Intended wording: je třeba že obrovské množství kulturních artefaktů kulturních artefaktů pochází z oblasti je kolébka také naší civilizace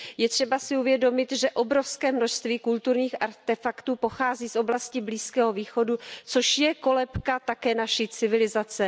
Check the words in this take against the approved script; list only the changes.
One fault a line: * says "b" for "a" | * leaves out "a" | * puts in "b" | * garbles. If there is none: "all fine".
* puts in "si uvědomit"
* leaves out "kulturních artefaktů"
* puts in "blízkého východu což"